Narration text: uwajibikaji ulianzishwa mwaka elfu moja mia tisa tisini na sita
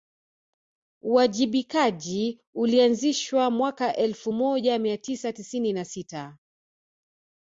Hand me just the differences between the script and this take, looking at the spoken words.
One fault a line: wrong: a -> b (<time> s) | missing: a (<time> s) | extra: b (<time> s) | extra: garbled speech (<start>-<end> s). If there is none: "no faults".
no faults